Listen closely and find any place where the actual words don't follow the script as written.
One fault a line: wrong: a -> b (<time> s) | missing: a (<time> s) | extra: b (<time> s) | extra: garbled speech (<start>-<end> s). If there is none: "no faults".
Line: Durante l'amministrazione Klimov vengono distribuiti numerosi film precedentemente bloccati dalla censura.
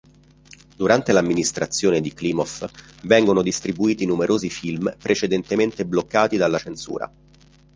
extra: di (2.0 s)